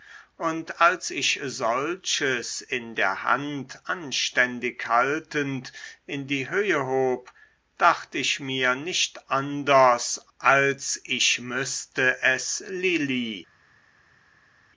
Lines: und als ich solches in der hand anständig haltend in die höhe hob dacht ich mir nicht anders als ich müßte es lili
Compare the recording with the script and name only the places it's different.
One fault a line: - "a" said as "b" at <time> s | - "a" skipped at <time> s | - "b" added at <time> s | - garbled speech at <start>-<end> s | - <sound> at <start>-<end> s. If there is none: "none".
none